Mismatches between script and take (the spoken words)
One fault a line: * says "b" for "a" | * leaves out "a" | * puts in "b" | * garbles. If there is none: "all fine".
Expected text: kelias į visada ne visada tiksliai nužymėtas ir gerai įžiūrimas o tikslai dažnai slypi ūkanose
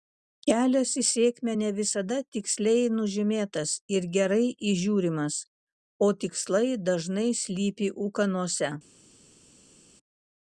* says "sėkmę" for "visada"